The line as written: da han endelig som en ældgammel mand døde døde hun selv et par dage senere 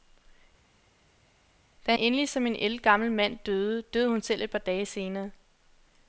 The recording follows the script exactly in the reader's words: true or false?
false